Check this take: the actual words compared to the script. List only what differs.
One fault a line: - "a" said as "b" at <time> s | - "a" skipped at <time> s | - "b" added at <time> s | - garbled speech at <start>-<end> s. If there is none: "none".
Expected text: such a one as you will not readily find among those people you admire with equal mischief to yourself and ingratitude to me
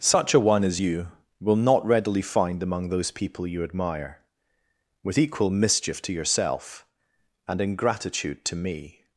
none